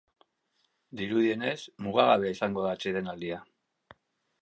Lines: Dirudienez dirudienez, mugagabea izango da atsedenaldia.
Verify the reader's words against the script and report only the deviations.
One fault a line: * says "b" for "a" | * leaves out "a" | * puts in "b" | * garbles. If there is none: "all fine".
* leaves out "dirudienez"